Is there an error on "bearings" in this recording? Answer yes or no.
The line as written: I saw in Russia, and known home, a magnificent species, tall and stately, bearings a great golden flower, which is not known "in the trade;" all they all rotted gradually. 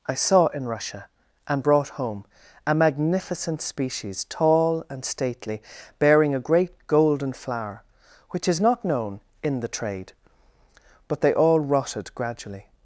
yes